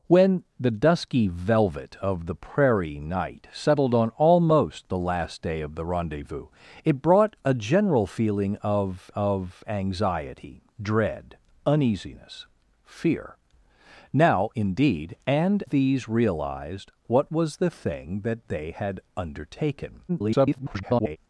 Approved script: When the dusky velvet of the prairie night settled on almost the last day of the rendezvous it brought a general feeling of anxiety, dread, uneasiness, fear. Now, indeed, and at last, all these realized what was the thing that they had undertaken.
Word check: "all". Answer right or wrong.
wrong